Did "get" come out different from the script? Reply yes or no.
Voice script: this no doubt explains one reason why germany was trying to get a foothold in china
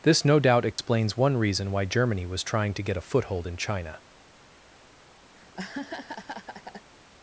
no